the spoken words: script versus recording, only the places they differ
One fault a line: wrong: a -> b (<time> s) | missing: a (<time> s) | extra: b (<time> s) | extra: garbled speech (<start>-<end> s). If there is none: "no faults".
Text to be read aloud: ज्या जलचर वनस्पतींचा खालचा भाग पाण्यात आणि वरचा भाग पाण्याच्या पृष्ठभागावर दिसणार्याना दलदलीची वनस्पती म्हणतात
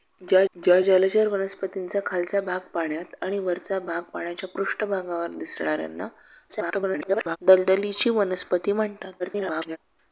extra: ज्या (0.6 s)
extra: garbled speech (6.5-7.4 s)
extra: garbled speech (9.2-9.8 s)